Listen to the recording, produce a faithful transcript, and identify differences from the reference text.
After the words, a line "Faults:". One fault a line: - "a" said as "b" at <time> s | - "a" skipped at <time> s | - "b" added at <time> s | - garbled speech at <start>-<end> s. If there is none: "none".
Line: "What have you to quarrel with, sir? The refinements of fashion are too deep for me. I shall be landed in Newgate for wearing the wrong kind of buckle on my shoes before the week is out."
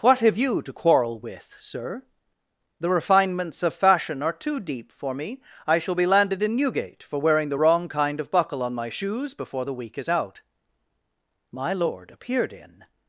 "What have you to quarrel with, sir? The refinements of fashion are too deep for me. I shall be landed in Newgate for wearing the wrong kind of buckle on my shoes before the week is out." My lord appeared in
Faults:
- "My lord appeared in" added at 11.5 s